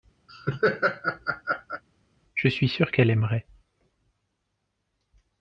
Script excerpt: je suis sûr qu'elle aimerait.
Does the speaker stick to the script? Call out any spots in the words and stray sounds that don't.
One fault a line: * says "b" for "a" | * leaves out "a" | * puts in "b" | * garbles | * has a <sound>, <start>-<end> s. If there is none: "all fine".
* has a laugh, 0.3-1.8 s